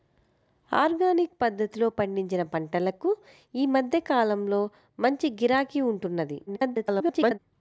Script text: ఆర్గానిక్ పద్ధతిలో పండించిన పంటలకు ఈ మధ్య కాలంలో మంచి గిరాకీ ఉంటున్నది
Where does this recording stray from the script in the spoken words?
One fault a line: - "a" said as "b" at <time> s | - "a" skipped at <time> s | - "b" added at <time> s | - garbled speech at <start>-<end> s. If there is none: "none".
- garbled speech at 6.5-7.4 s